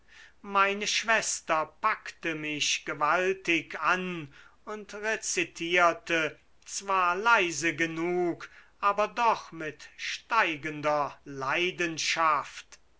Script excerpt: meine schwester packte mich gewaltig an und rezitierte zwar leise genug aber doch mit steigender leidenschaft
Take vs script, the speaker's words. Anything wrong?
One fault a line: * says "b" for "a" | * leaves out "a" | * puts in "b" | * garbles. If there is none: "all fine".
all fine